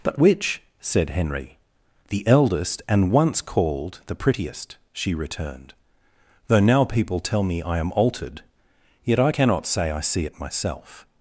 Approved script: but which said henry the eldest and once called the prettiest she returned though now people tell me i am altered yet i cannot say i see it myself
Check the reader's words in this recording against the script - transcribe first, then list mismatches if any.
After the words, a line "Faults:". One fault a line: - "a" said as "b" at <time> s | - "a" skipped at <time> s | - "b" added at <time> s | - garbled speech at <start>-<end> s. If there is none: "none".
but which said henry the eldest and once called the prettiest she returned though now people tell me i am altered yet i cannot say i see it myself
Faults:
none